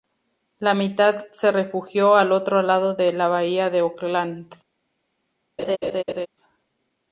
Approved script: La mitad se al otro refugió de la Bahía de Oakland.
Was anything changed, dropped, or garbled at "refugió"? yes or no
yes